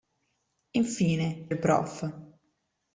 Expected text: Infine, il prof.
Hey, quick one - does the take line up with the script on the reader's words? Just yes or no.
yes